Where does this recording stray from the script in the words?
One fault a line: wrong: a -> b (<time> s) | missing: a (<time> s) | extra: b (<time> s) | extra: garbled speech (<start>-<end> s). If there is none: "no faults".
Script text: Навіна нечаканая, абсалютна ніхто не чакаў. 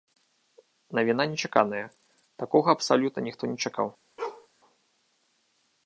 extra: такога (2.5 s)